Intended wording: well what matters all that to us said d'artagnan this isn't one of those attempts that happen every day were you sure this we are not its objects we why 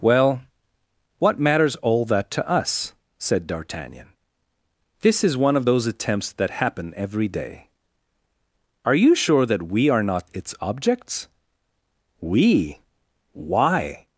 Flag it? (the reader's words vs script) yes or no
yes